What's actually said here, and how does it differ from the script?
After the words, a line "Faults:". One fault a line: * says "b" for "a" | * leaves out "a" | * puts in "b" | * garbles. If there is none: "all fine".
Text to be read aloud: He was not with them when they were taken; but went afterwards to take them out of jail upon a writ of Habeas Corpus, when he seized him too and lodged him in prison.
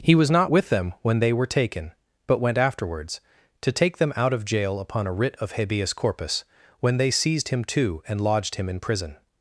He was not with them when they were taken; but went afterwards to take them out of jail upon a writ of Habeas Corpus, when they seized him too and lodged him in prison.
Faults:
* says "they" for "he"